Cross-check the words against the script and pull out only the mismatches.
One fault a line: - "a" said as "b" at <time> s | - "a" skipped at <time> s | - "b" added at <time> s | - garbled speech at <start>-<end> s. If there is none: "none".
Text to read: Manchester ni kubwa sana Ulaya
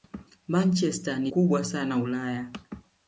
none